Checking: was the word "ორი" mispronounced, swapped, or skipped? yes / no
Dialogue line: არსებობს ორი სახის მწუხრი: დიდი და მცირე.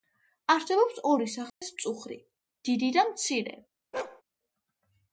no